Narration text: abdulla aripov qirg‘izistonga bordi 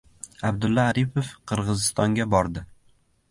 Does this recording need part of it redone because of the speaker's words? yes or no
no